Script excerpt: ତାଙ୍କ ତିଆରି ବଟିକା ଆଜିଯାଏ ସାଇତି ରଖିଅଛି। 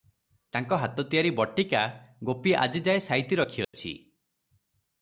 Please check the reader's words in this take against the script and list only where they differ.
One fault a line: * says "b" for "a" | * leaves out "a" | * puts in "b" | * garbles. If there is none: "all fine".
* puts in "ହାତ"
* puts in "ଗୋପୀ"